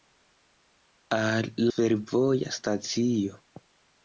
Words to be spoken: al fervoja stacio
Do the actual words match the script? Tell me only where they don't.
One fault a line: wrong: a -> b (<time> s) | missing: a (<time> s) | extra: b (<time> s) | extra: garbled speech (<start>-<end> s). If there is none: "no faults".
no faults